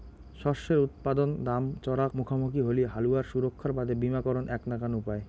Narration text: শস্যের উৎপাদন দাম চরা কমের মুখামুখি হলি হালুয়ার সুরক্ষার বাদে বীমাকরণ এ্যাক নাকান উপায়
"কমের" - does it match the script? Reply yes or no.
no